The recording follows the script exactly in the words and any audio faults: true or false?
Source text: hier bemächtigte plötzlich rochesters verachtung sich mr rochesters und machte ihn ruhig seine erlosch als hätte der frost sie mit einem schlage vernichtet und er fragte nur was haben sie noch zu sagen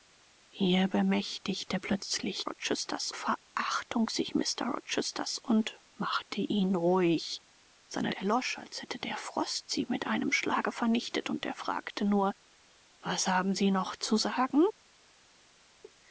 true